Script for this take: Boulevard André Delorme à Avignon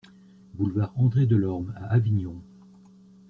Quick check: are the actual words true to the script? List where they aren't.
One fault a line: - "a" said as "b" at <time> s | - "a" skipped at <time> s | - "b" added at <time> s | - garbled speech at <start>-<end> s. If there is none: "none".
none